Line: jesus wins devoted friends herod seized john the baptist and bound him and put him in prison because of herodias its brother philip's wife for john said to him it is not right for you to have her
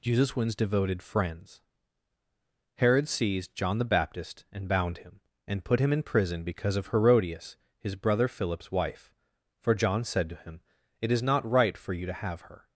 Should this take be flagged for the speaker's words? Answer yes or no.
yes